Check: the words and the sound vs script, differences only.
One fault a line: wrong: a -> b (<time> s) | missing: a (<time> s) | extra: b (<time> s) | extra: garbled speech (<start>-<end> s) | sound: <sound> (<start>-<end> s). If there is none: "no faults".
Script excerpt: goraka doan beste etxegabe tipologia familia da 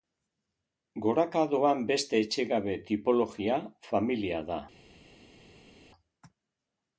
no faults